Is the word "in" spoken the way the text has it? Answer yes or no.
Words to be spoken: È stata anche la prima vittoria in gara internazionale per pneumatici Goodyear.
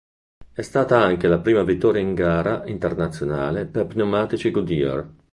yes